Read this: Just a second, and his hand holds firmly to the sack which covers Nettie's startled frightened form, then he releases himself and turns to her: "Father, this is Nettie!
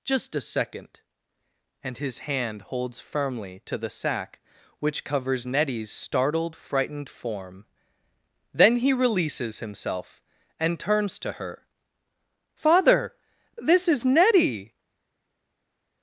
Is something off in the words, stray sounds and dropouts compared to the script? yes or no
no